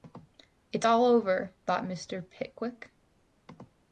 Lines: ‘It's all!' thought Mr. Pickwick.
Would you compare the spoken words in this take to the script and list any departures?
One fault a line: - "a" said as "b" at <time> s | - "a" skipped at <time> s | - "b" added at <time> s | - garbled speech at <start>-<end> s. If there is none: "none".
- "over" added at 1.0 s